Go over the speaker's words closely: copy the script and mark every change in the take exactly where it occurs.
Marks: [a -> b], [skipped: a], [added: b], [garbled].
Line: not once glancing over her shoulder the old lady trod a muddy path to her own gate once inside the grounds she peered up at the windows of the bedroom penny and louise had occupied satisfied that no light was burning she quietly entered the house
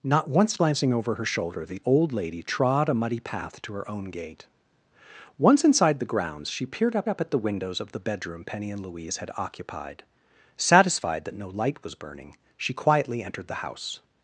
not once glancing over her shoulder the old lady trod a muddy path to her own gate once inside the grounds she peered up [added: up] at the windows of the bedroom penny and louise had occupied satisfied that no light was burning she quietly entered the house